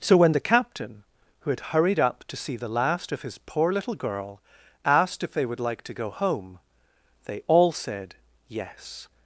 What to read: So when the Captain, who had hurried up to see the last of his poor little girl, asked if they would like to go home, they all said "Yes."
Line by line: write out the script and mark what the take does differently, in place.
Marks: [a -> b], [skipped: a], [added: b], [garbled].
So when the Captain, who had hurried up to see the last of his poor little girl, asked if they would like to go home, they all said "Yes."